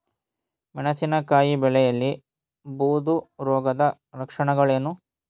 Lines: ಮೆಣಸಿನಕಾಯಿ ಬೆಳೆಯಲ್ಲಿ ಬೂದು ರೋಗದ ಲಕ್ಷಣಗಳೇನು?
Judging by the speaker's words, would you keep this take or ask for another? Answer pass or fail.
pass